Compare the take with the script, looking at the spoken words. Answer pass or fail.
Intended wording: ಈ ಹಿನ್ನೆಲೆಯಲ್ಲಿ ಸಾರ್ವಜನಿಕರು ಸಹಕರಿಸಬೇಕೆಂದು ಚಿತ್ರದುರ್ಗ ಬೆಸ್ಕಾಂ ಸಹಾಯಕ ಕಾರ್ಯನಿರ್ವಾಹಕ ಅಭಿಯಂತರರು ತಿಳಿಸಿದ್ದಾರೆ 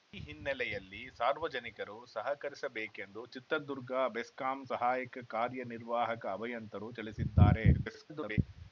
fail